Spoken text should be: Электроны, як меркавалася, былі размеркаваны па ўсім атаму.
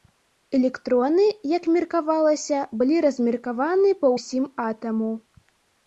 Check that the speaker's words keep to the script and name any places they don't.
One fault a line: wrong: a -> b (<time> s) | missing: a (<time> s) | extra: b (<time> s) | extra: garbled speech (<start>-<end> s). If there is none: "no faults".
no faults